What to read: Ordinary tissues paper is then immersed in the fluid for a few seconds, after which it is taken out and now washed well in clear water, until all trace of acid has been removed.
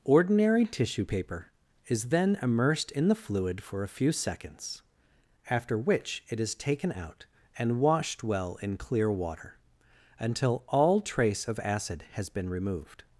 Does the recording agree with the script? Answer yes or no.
no